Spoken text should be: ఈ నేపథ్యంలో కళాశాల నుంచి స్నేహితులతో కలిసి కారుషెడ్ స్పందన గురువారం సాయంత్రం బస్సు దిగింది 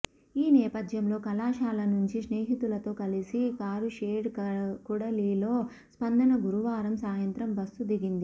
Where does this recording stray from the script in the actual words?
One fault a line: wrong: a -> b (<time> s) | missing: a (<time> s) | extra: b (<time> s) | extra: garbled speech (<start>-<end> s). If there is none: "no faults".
extra: కూడలిలో (4.9 s)